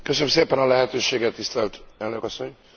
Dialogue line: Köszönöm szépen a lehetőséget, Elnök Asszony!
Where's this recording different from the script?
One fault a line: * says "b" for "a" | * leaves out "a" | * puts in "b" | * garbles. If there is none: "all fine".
* puts in "tisztelt"